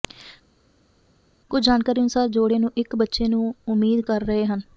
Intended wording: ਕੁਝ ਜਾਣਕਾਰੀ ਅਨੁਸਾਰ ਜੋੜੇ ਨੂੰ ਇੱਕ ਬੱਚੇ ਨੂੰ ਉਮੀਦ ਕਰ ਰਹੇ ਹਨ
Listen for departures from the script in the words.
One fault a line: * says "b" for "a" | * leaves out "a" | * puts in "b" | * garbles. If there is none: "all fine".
all fine